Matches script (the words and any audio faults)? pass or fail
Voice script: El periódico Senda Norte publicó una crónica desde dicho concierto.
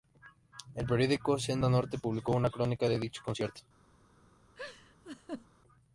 fail